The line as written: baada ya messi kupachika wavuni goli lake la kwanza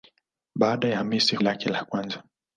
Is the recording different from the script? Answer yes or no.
yes